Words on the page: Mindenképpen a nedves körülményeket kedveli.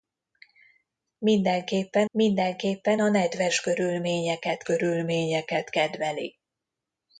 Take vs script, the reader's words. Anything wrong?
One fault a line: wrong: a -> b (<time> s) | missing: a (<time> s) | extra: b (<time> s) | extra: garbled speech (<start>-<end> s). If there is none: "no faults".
extra: mindenképpen (2.1 s)
extra: körülményeket (4.6 s)